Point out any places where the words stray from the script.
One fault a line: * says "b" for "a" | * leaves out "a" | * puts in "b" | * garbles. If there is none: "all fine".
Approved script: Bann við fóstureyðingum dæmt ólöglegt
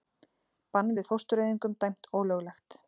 all fine